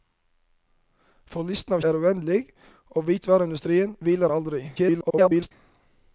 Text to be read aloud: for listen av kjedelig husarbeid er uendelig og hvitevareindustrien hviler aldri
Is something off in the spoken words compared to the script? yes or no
yes